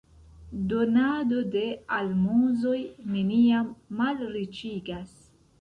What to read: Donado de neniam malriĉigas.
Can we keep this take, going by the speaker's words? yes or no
no